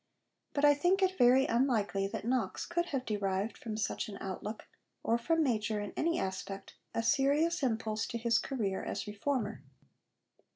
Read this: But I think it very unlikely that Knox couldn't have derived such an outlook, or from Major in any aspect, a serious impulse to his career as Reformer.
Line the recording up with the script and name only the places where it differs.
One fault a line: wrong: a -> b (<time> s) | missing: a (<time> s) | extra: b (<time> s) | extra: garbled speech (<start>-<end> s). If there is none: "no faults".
wrong: couldn't -> could (2.6 s)
extra: from (3.5 s)